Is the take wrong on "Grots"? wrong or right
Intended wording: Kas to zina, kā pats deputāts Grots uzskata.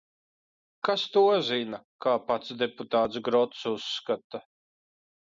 right